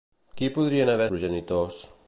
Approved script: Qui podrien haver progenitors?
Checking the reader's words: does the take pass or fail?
pass